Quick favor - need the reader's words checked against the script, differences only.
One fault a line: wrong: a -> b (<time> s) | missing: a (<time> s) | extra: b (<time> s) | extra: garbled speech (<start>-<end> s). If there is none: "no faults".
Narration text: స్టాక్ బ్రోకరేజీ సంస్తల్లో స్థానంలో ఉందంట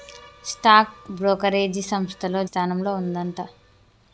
no faults